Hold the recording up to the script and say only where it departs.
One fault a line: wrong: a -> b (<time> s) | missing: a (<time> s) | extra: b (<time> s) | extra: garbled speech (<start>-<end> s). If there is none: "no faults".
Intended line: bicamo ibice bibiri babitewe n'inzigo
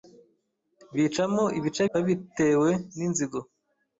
missing: bibiri (1.8 s)